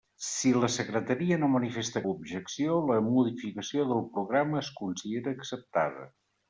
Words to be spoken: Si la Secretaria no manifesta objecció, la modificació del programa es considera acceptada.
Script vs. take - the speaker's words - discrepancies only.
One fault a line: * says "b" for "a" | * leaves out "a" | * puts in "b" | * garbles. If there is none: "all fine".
all fine